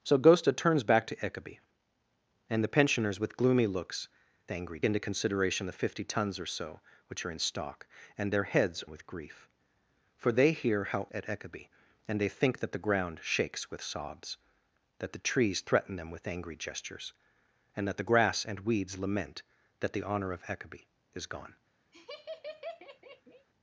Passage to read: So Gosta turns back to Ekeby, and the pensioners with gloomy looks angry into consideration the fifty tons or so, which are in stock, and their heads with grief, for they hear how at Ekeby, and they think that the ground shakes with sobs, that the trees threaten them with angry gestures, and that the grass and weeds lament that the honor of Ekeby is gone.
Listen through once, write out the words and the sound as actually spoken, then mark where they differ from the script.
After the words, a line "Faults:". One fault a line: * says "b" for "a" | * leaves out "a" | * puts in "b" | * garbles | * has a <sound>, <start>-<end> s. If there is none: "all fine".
So Gosta turns back to Ekeby, and the pensioners with gloomy looks angry into consideration the fifty tons or so, which are in stock, and their heads with grief, for they hear how at Ekeby, and they think that the ground shakes with sobs, that the trees threaten them with angry gestures, and that the grass and weeds lament that the honor of Ekeby is gone.
Faults:
* has a laugh, 21.9-23.5 s